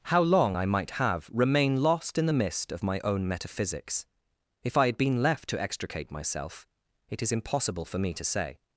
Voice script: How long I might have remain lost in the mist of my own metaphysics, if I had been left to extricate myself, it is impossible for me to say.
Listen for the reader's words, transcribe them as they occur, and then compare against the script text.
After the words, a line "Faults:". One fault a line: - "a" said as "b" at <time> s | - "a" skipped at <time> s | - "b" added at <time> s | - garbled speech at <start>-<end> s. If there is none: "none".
How long I might have remain lost in the mist of my own metaphysics, if I had been left to extricate myself, it is impossible for me to say.
Faults:
none